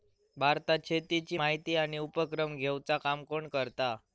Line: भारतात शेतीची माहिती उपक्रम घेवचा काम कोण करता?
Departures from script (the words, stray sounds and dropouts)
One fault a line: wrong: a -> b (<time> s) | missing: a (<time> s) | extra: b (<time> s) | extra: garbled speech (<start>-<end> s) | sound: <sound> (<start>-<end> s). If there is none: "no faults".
extra: आणि (1.8 s)